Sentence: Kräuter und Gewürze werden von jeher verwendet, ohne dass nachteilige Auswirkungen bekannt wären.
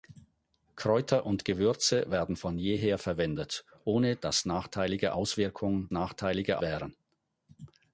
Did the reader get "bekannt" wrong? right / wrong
wrong